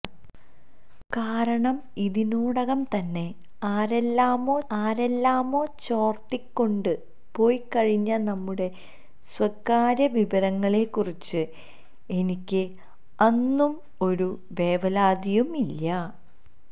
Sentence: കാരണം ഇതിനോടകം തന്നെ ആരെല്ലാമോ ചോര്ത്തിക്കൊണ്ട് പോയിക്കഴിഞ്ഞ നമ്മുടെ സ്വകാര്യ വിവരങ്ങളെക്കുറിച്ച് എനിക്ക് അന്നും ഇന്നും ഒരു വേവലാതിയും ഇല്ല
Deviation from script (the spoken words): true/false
true